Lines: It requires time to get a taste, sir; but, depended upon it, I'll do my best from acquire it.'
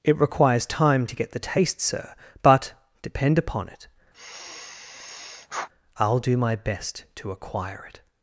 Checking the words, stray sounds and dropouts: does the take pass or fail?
fail